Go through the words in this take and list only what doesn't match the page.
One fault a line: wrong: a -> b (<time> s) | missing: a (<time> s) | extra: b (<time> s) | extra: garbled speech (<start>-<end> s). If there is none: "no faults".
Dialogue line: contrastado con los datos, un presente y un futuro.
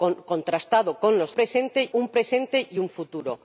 wrong: datos -> presente (1.3 s)